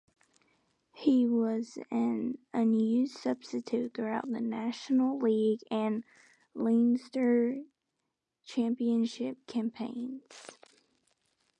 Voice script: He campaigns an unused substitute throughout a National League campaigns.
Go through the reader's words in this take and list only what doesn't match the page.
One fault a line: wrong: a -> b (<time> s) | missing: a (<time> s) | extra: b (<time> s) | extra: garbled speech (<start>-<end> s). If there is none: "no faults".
wrong: campaigns -> was (1.3 s)
wrong: a -> the (4.2 s)
extra: and Leinster Championship (5.7 s)